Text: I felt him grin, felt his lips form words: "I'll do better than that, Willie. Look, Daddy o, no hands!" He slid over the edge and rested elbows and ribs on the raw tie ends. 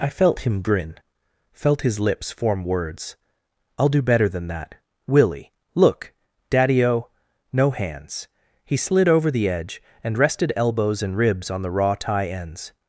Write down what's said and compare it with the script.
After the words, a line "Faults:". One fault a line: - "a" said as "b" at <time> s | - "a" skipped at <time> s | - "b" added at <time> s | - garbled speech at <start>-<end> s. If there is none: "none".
I felt him grin, felt his lips form words: "I'll do better than that, Willie. Look, Daddy o, no hands!" He slid over the edge and rested elbows and ribs on the raw tie ends.
Faults:
none